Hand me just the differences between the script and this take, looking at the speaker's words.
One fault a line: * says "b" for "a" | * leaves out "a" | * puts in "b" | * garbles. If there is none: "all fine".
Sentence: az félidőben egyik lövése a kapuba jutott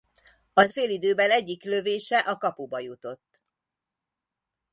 all fine